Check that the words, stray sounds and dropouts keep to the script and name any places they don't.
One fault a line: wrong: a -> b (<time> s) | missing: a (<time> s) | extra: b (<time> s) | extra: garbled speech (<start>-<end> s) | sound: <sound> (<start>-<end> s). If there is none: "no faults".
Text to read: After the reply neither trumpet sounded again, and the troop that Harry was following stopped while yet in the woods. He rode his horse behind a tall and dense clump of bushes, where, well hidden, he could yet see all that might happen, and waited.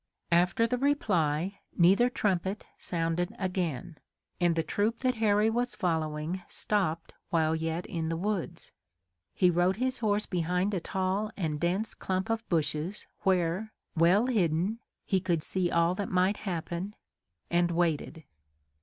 missing: yet (15.4 s)